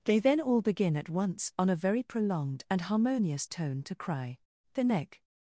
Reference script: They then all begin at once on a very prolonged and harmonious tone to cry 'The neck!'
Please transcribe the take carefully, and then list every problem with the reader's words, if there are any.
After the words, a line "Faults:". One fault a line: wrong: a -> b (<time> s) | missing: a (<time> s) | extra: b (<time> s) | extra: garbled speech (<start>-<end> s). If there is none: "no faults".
They then all begin at once on a very prolonged and harmonious tone to cry 'The neck!'
Faults:
no faults